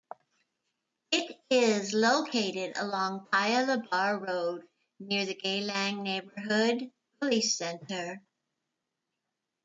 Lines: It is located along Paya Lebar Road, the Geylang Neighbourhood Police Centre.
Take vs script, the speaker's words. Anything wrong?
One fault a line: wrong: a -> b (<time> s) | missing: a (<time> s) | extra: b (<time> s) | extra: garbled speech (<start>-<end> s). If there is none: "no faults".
extra: near (5.0 s)